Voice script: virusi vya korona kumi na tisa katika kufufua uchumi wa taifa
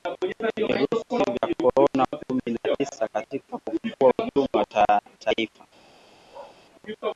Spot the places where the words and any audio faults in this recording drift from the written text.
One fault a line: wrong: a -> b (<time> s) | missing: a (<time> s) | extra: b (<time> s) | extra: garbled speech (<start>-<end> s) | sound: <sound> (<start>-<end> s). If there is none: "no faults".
sound: bark (6.3-6.6 s)